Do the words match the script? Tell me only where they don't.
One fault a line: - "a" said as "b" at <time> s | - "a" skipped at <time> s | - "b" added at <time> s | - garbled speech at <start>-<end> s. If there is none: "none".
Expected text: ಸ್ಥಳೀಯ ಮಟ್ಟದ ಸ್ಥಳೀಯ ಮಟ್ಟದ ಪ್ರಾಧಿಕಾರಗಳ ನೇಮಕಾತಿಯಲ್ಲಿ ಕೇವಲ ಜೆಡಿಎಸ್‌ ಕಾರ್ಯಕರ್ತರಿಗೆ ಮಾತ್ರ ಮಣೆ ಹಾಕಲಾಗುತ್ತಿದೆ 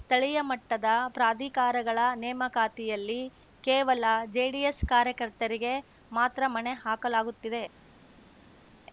- "ಸ್ಥಳೀಯ ಮಟ್ಟದ" skipped at 0.9 s